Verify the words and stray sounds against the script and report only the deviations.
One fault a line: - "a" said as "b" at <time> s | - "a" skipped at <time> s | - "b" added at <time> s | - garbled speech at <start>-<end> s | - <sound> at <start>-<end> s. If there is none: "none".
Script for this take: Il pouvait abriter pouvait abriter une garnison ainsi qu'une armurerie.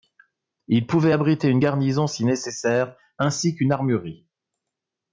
- "pouvait abriter une garnison" said as "une garnison si nécessaire" at 1.5 s